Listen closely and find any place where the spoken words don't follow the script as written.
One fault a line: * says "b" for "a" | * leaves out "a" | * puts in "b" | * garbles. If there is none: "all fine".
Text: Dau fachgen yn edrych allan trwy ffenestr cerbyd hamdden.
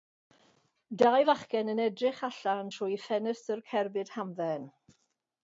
all fine